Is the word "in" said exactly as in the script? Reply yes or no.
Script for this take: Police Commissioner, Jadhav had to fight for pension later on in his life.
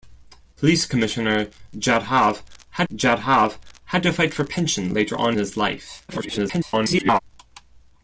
no